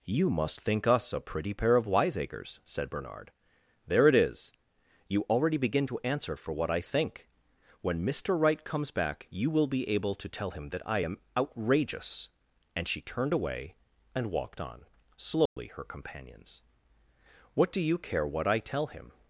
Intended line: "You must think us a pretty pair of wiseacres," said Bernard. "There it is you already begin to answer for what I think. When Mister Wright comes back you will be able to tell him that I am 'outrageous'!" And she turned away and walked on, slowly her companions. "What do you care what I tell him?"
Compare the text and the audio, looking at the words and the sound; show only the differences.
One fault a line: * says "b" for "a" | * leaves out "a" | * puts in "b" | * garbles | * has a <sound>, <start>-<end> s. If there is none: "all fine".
* has a dropout, 15.5-15.6 s